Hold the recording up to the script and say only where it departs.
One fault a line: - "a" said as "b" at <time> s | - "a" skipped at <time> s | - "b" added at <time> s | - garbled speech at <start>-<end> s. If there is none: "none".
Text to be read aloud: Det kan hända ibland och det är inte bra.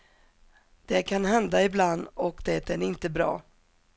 none